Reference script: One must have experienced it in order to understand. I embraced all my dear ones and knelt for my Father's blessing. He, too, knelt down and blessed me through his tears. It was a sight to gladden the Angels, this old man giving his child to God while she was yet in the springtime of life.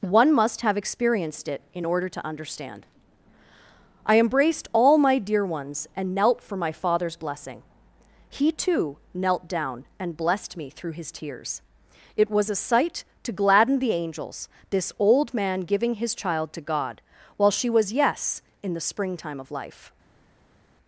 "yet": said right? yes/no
no